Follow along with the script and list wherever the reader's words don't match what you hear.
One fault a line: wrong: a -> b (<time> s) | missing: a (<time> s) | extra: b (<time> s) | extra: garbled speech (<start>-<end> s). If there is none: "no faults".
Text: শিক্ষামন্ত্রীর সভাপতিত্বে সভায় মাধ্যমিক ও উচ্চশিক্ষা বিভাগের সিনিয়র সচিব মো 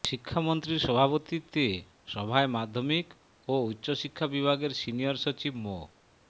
no faults